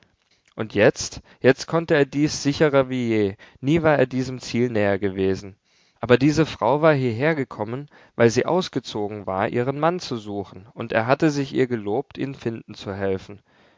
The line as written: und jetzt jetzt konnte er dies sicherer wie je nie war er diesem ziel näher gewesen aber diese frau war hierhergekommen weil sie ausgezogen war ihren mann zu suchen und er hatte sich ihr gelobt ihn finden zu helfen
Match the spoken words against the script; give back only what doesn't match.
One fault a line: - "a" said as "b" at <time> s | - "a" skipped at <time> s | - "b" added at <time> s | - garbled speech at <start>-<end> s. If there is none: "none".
none